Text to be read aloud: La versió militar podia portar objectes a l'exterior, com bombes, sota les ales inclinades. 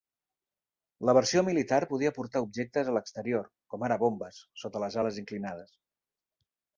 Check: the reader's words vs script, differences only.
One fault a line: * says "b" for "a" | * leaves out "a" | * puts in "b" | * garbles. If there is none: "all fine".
* puts in "ara"